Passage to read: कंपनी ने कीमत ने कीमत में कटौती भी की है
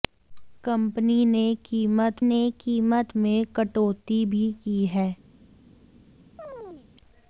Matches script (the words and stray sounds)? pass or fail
fail